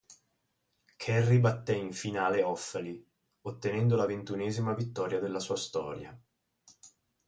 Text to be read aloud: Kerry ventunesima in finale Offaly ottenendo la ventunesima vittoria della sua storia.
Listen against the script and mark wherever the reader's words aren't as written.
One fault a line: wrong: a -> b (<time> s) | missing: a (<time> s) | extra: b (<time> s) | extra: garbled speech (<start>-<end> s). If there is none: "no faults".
wrong: ventunesima -> batté (1.4 s)